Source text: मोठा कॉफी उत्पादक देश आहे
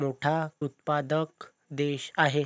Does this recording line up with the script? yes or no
no